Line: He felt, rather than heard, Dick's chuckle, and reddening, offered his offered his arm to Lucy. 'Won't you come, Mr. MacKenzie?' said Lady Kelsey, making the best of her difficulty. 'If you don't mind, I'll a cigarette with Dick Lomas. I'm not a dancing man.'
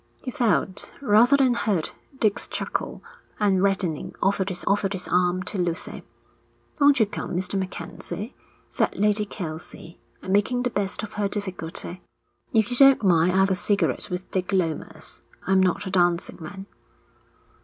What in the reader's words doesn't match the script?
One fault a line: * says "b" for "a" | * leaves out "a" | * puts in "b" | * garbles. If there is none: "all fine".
all fine